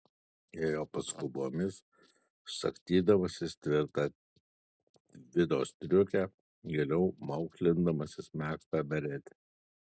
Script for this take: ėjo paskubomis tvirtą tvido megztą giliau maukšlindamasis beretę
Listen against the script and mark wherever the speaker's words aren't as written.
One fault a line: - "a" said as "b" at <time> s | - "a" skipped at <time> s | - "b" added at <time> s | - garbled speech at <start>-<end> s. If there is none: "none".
- "sagstydamasis" added at 2.5 s
- "megztą" said as "striukę" at 5.7 s
- "megztą" added at 8.4 s